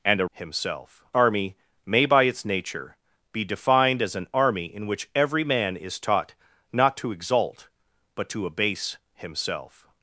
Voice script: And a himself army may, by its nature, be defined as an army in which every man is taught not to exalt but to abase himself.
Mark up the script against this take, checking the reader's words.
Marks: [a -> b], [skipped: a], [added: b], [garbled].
And a himself army may, by its nature, be defined as an army in which every man is taught not to exalt but to abase himself.